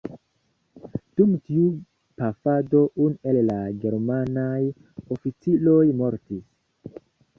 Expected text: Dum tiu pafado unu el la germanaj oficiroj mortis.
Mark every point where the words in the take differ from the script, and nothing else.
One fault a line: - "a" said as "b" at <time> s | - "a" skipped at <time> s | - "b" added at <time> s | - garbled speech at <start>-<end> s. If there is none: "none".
none